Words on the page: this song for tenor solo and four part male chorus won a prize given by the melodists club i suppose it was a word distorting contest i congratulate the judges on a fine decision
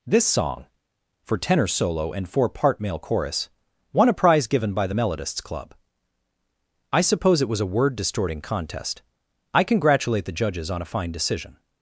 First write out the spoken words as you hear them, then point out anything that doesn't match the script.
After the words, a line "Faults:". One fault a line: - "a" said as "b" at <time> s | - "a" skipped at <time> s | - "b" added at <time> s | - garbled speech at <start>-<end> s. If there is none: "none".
this song for tenor solo and four part male chorus won a prize given by the melodists club i suppose it was a word distorting contest i congratulate the judges on a fine decision
Faults:
none